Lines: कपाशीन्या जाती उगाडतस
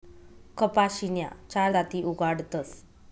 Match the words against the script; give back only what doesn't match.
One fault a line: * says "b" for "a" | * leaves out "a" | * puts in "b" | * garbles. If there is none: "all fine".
* puts in "चार"